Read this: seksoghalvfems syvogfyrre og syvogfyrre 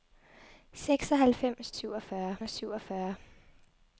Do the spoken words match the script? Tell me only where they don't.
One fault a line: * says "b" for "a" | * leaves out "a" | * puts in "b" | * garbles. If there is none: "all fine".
all fine